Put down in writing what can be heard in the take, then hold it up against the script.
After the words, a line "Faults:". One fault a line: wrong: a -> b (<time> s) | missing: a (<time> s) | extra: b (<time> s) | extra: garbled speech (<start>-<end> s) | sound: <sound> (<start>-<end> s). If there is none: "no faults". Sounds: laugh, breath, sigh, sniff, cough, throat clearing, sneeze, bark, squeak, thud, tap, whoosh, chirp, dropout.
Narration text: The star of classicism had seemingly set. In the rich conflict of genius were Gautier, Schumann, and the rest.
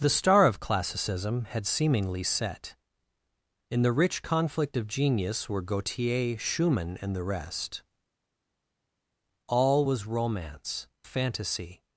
The star of classicism had seemingly set. In the rich conflict of genius were Gautier, Schumann, and the rest. All was romance, fantasy
Faults:
extra: All was romance fantasy (9.5 s)